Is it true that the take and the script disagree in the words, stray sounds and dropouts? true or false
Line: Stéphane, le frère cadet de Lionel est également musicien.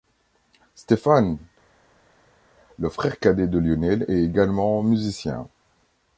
false